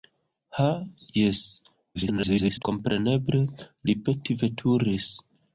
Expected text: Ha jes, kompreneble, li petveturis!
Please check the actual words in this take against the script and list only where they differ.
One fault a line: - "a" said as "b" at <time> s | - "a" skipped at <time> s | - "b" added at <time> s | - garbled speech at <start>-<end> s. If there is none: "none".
- garbled speech at 1.9-2.6 s